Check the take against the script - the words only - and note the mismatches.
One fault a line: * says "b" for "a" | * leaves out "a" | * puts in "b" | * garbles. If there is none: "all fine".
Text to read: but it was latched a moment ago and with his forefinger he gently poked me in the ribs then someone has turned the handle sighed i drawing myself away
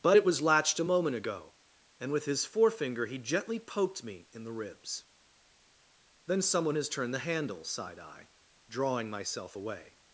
all fine